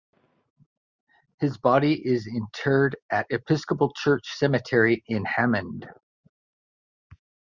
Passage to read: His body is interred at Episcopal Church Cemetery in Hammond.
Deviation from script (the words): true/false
false